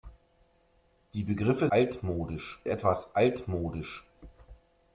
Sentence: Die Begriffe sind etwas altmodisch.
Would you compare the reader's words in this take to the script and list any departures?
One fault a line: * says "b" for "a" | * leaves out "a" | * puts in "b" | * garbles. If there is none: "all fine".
* says "altmodisch" for "sind"